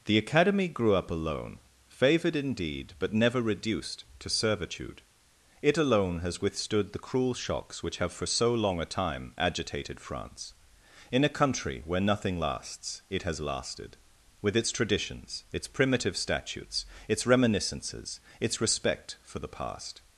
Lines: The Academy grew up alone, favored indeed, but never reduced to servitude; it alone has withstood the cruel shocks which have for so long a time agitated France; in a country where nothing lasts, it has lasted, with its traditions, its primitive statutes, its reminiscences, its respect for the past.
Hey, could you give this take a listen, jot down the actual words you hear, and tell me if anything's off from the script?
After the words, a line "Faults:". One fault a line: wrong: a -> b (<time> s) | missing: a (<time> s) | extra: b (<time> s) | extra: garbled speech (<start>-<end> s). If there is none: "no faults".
The Academy grew up alone, favored indeed, but never reduced to servitude; it alone has withstood the cruel shocks which have for so long a time agitated France; in a country where nothing lasts, it has lasted, with its traditions, its primitive statutes, its reminiscences, its respect for the past.
Faults:
no faults